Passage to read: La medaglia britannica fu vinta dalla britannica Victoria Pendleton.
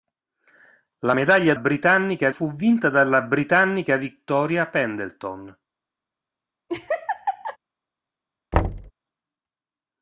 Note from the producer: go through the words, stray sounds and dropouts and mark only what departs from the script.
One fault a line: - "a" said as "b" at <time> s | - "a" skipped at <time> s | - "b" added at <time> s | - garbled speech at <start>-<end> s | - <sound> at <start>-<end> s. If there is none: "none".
- laugh at 6.7-7.6 s
- thud at 8.5-8.9 s